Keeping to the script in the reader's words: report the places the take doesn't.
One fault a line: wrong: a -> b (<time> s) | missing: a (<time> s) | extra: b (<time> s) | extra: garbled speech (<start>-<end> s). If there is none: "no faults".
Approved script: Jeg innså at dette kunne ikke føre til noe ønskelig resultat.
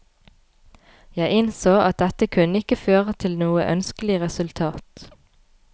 no faults